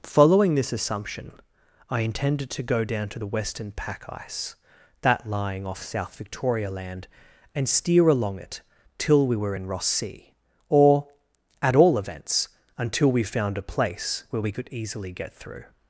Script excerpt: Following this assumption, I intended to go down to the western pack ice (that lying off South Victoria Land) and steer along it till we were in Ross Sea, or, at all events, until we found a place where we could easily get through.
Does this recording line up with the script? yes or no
yes